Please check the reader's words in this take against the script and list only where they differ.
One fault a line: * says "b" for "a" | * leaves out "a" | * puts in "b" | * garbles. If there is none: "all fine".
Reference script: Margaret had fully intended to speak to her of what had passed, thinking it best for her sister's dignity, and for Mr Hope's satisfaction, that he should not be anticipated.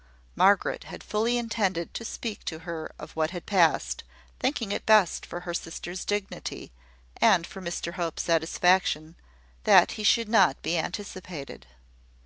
all fine